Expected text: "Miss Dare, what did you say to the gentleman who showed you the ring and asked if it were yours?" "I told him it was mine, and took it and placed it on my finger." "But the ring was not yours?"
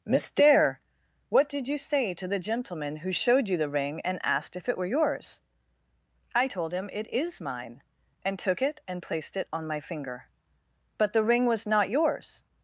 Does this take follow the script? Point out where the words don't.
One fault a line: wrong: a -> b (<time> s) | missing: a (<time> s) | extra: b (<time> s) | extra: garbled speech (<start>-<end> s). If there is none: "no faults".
wrong: was -> is (7.1 s)